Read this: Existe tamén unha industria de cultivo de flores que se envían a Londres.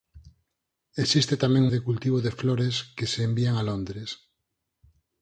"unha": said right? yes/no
no